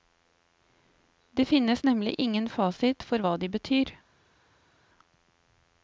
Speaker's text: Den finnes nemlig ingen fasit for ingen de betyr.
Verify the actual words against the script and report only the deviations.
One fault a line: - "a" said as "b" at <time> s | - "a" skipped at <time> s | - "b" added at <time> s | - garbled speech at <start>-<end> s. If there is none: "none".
- "Den" said as "Det" at 1.3 s
- "ingen" said as "hva" at 3.2 s